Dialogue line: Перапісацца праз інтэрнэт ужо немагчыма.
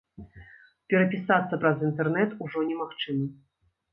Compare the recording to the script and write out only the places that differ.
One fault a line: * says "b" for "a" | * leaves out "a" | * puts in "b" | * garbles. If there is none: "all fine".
all fine